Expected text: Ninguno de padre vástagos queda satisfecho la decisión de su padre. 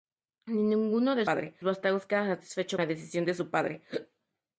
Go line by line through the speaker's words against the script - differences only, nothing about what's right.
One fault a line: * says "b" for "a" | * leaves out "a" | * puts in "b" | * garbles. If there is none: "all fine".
all fine